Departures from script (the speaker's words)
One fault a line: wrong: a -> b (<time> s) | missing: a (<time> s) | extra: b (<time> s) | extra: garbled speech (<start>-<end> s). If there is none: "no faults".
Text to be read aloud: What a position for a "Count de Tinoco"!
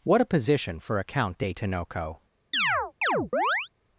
no faults